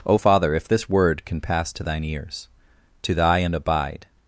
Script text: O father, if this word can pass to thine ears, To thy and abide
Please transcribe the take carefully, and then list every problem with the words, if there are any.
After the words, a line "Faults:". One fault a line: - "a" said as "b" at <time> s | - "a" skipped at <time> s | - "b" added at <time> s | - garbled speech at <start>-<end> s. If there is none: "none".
O father, if this word can pass to thine ears, To thy and abide
Faults:
none